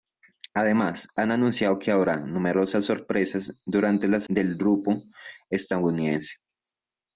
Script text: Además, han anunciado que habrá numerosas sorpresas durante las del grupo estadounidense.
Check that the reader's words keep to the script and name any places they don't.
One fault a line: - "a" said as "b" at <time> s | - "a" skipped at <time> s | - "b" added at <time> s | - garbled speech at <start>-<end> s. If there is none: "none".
none